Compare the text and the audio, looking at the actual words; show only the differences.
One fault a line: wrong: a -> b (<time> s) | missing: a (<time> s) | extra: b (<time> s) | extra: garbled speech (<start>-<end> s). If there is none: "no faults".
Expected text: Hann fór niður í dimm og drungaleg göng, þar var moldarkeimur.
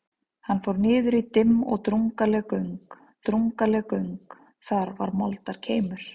extra: drungaleg göng (3.3 s)